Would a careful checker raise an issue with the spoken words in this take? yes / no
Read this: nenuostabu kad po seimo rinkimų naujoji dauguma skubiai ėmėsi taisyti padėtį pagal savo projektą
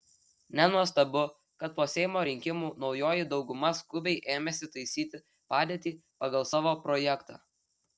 no